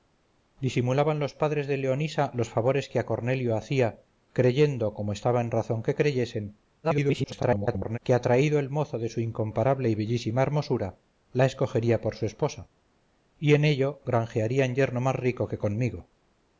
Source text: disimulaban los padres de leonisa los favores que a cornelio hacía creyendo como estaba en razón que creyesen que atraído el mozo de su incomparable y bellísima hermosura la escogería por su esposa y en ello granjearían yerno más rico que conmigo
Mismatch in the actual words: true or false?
true